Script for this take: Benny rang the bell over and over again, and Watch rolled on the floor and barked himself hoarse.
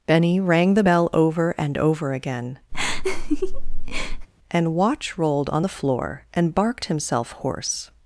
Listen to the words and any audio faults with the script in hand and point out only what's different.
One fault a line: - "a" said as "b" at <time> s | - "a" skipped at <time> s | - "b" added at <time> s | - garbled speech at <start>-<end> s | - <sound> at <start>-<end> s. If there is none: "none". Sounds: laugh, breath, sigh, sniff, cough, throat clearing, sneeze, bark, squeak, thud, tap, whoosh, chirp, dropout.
- laugh at 2.7-4.3 s